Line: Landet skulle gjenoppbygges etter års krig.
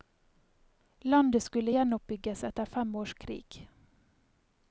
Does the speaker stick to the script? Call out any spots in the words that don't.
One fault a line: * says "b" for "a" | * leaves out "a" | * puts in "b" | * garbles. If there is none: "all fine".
* puts in "fem"